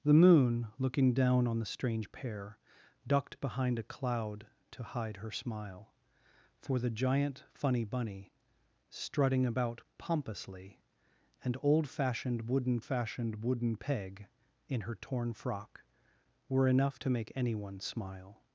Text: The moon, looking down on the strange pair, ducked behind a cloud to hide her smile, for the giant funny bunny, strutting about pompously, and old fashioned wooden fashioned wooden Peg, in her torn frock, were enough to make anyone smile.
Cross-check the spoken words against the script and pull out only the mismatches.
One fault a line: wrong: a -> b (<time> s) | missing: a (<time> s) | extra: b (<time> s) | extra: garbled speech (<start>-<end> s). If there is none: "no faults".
no faults